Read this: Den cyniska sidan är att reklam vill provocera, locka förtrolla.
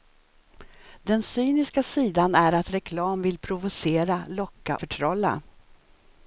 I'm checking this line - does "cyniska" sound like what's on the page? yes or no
yes